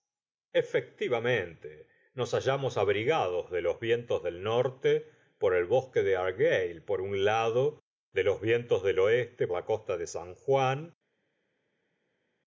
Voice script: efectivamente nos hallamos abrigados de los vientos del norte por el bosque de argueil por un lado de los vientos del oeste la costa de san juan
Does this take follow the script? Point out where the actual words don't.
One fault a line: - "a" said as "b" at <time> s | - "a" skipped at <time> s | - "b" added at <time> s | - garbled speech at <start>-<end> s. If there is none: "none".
none